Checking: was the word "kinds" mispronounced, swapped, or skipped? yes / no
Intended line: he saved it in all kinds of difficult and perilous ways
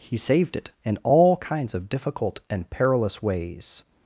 no